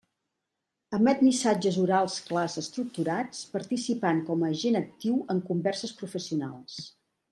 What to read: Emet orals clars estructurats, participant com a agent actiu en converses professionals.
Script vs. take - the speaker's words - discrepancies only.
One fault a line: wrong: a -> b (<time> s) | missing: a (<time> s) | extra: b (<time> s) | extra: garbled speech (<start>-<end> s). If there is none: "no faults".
extra: missatges (1.2 s)